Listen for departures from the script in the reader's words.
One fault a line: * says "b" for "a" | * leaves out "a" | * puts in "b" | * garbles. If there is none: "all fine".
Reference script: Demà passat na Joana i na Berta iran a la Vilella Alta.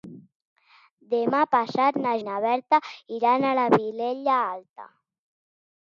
* leaves out "Joana"